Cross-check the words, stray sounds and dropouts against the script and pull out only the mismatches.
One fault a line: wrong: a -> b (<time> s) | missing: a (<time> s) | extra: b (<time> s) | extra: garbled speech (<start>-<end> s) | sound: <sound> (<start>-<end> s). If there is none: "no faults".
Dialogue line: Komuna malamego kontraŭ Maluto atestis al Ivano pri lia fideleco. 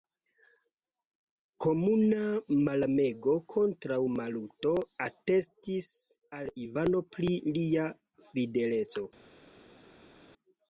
no faults